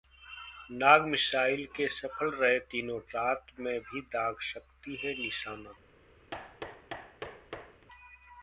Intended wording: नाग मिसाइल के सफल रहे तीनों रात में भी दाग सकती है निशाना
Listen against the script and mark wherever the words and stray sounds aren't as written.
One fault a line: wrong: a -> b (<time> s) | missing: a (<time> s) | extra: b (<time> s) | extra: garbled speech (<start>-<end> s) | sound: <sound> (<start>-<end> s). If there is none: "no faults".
sound: thud (6.3-7.9 s)